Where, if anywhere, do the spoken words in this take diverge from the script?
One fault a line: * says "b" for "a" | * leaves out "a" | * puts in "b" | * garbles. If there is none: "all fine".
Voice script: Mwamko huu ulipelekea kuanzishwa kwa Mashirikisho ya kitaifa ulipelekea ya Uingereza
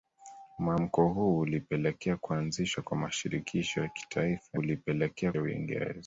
all fine